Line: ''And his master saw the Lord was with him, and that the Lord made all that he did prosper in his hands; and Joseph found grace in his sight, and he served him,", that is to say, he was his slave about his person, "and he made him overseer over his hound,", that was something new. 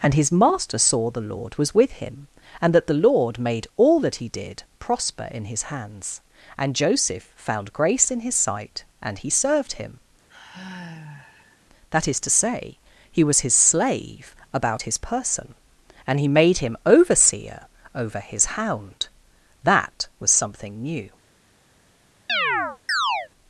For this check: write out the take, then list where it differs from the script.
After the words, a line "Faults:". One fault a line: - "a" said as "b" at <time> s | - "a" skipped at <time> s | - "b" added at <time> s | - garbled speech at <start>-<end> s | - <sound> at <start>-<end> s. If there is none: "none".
''And his master saw the Lord was with him, and that the Lord made all that he did prosper in his hands; and Joseph found grace in his sight, and he served him,", that is to say, he was his slave about his person, "and he made him overseer over his hound,", that was something new.
Faults:
- sigh at 10.3-11.6 s
- chirp at 22.3-23.3 s